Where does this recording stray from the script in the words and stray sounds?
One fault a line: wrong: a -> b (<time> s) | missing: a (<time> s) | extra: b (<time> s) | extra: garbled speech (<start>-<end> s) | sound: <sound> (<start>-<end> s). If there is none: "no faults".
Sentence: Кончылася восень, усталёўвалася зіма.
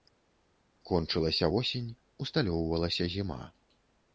no faults